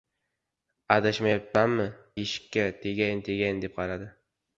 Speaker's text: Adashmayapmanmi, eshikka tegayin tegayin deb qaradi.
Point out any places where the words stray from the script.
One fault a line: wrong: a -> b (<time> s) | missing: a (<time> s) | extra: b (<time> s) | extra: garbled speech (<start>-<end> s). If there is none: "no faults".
no faults